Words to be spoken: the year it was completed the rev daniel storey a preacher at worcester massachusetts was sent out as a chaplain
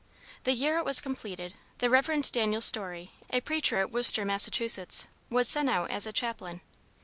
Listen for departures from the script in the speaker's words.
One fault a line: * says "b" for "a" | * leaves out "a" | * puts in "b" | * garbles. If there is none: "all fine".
all fine